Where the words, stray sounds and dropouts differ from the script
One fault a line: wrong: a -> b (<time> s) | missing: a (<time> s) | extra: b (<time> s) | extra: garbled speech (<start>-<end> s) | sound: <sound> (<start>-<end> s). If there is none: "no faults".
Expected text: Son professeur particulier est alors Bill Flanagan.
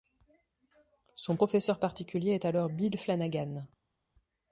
no faults